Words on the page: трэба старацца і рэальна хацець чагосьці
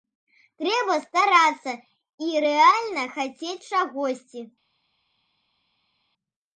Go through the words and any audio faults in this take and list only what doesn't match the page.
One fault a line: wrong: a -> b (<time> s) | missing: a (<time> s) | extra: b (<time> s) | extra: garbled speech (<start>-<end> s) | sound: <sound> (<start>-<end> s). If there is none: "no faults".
no faults